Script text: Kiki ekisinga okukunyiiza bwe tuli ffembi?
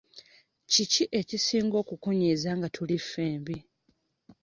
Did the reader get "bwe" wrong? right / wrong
wrong